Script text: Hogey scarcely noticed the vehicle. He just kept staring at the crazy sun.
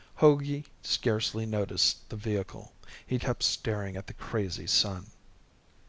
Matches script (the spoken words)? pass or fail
fail